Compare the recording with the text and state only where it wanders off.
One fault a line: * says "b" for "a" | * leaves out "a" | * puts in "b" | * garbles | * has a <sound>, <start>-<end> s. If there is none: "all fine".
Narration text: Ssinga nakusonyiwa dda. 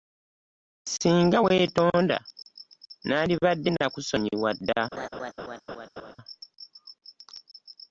* puts in "weetonda nandibadde"
* has a laugh, 4.9-6.2 s